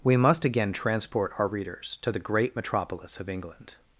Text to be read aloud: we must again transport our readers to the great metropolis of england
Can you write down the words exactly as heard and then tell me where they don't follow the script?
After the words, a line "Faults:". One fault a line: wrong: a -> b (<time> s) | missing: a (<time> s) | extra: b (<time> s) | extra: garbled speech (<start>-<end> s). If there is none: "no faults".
we must again transport our readers to the great metropolis of england
Faults:
no faults